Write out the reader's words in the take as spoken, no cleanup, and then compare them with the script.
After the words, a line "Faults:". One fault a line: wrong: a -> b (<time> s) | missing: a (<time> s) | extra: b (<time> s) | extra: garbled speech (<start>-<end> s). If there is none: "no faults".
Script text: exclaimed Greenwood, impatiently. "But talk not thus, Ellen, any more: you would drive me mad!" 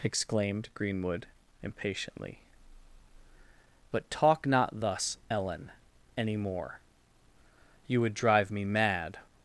exclaimed Greenwood, impatiently. "But talk not thus, Ellen, any more: you would drive me mad!"
Faults:
no faults